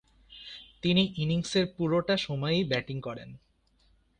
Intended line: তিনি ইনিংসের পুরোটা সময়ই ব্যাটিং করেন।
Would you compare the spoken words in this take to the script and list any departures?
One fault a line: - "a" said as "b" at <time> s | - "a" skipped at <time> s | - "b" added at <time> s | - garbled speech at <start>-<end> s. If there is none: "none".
none